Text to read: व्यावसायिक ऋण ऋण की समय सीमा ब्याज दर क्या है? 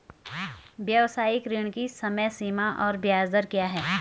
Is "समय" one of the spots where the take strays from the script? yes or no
no